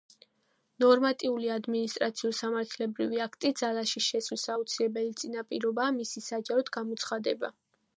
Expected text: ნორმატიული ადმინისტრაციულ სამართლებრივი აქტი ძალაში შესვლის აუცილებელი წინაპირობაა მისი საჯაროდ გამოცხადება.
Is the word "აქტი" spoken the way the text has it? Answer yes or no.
yes